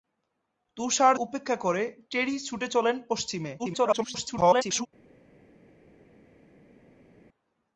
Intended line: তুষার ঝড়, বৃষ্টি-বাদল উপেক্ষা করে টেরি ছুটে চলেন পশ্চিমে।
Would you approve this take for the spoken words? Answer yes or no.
no